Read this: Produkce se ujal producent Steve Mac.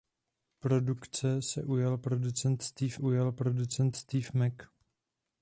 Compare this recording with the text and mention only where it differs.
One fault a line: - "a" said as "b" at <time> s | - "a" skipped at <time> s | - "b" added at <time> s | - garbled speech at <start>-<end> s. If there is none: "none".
- "ujal producent Steve" added at 3.0 s